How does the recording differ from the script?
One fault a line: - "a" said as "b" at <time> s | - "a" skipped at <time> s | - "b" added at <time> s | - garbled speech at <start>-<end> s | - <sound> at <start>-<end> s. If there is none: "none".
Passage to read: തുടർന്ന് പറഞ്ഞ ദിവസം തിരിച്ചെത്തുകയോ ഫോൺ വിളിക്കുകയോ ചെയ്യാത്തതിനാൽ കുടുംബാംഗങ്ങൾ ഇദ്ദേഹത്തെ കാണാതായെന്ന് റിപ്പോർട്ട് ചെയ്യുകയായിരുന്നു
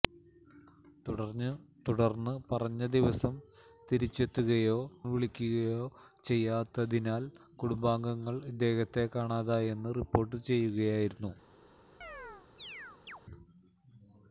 - "ഫോൺ" skipped at 4.8 s
- chirp at 12.0-13.2 s